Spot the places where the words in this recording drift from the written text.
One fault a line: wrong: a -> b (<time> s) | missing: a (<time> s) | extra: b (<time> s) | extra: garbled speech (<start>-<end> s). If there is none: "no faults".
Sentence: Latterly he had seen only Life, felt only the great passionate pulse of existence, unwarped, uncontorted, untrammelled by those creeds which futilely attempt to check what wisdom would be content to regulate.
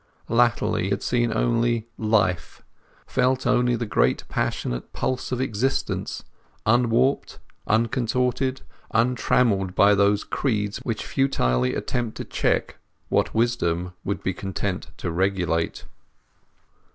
missing: he (0.9 s)